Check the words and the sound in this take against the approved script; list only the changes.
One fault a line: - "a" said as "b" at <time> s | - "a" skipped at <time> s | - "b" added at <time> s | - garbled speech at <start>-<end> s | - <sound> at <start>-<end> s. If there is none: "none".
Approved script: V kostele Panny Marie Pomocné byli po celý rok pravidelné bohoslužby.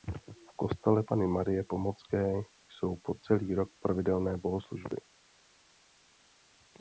- "byli" said as "jsou" at 2.7 s